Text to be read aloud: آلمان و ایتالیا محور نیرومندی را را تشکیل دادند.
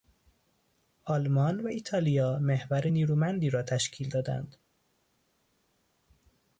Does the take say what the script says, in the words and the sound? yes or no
no